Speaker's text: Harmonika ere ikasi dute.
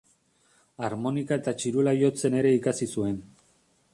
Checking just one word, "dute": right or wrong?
wrong